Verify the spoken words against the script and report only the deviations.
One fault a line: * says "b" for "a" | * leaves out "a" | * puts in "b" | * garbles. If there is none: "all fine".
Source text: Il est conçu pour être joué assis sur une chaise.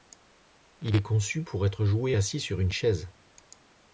all fine